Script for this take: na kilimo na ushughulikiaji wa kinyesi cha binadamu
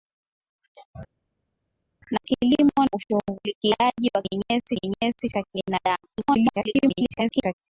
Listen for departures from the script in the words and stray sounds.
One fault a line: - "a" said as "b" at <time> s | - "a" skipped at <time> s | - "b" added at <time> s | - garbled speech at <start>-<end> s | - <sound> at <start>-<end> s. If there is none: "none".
- "na" skipped at 2.8 s
- "kinyesi" added at 4.7 s
- garbled speech at 6.1-7.5 s